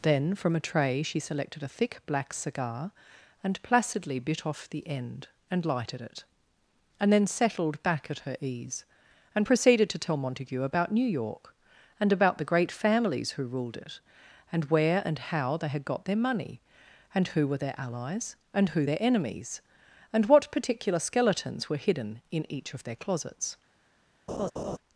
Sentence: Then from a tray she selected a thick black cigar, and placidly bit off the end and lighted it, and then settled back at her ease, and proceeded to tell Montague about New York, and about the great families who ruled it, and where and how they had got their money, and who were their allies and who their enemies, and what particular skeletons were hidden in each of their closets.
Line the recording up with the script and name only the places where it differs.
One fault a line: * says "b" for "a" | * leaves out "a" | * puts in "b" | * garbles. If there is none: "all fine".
all fine